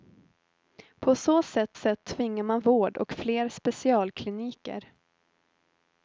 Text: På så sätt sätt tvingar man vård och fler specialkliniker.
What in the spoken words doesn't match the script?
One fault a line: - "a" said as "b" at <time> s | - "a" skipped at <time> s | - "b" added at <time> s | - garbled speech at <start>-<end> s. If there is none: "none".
none